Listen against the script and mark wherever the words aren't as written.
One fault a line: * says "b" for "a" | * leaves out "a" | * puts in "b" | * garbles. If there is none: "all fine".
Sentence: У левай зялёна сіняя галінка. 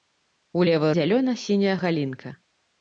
all fine